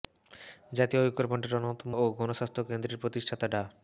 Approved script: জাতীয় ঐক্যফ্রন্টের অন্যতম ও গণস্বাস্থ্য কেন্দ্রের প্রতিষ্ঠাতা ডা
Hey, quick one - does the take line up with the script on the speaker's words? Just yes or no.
yes